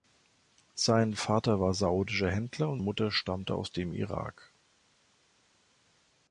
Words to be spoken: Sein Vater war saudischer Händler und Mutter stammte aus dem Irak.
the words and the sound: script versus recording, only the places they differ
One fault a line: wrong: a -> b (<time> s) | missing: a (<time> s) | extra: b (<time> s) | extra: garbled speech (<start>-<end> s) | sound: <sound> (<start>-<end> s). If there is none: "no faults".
no faults